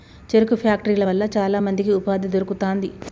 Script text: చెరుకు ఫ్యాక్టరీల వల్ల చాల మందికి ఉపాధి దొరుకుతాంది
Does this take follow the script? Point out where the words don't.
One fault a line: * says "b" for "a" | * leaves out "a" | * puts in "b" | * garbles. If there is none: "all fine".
all fine